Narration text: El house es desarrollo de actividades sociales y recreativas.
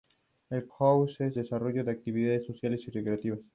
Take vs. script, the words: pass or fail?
pass